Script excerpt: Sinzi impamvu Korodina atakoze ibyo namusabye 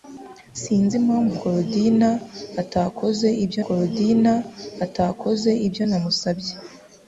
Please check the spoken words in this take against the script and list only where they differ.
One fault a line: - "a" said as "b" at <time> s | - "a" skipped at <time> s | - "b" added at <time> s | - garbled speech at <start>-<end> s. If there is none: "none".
- "Korodina atakoze ibyo" added at 3.6 s